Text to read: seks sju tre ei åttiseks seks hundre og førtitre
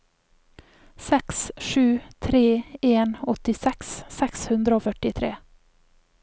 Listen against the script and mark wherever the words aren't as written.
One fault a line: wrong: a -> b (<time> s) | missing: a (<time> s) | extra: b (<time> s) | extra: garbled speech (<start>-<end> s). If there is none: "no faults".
wrong: ei -> en (2.8 s)